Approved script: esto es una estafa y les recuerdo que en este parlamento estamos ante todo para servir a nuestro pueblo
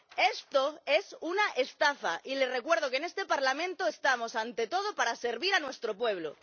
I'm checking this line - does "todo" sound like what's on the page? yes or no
yes